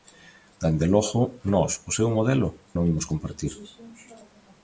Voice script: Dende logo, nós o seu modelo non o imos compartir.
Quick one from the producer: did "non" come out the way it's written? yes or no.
no